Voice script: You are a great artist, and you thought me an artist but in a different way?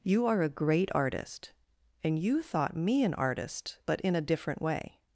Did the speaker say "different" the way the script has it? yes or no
yes